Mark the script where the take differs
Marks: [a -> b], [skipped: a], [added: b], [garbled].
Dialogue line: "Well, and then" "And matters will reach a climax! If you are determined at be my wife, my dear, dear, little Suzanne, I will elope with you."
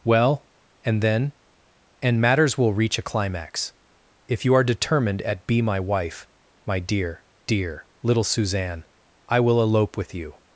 "Well, and then" "And matters will reach a climax! If you are determined at be my wife, my dear, dear, little Suzanne, I will elope with you."